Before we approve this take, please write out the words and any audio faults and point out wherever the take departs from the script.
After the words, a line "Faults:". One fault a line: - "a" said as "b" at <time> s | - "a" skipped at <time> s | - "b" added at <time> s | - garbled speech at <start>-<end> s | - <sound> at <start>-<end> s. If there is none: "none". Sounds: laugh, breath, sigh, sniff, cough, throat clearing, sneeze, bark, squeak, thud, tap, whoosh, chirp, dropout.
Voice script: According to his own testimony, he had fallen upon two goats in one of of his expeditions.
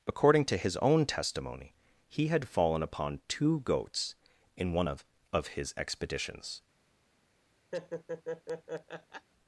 According to his own testimony, he had fallen upon two goats in one of of his expeditions.
Faults:
- laugh at 7.7-9.3 s